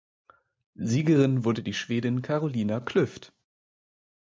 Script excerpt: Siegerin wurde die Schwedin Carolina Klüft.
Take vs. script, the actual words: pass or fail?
pass